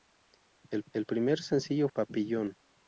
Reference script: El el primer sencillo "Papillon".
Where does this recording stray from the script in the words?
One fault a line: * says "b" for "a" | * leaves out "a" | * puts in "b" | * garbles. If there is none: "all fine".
all fine